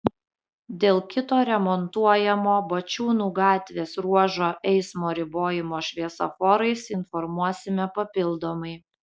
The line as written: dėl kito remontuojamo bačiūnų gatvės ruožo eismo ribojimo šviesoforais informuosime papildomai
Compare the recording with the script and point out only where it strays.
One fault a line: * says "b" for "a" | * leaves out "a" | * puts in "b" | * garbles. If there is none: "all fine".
all fine